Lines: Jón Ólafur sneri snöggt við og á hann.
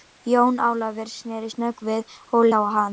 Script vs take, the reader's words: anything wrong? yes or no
no